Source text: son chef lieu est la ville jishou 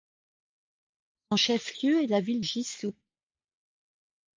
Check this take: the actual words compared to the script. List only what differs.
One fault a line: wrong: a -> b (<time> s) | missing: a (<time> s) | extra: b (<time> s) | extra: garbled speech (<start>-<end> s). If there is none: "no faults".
no faults